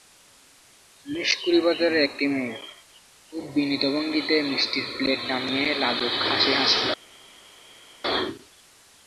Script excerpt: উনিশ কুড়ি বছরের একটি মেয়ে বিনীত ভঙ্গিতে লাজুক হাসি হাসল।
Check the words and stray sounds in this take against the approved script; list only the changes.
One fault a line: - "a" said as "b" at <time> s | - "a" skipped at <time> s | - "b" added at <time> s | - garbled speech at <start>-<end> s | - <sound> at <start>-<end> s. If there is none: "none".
- "খুব" added at 3.3 s
- "মিষ্টির প্লেট নামিয়ে" added at 4.5 s